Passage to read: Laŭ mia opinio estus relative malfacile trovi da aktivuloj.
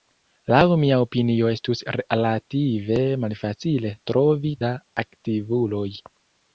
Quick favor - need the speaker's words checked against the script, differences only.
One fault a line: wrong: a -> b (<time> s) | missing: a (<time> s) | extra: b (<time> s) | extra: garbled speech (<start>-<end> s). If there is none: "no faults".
no faults